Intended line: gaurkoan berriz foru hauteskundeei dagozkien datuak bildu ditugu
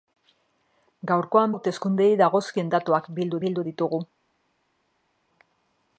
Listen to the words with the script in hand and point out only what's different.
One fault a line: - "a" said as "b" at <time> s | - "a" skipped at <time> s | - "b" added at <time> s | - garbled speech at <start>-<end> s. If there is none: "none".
- "berriz foru" skipped at 1.5 s
- "bildu" added at 3.4 s